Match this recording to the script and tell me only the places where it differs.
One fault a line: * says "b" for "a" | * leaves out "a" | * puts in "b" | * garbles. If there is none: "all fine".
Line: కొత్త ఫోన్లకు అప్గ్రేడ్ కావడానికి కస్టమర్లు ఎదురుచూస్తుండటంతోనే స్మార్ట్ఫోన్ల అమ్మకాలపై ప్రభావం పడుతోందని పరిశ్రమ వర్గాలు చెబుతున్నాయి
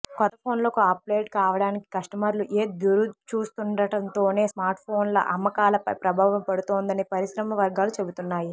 all fine